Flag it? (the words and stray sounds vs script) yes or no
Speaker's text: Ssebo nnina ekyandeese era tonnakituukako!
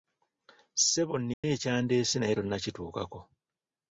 yes